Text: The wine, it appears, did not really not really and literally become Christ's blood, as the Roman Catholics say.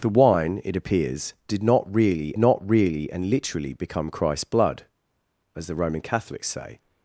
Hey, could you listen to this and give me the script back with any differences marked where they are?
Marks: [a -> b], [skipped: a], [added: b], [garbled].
The wine, it appears, did not really not really and literally become Christ's blood, as the Roman Catholics say.